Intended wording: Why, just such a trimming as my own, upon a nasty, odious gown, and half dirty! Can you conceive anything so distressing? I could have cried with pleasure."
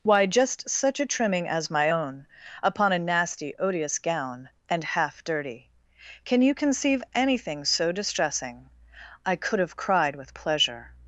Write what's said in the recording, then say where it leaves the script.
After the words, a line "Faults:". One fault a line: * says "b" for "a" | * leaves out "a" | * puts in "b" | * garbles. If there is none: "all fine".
Why, just such a trimming as my own, upon a nasty, odious gown, and half dirty! Can you conceive anything so distressing? I could have cried with pleasure."
Faults:
all fine